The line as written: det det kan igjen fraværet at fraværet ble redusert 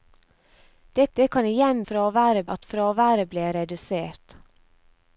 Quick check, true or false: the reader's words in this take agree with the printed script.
true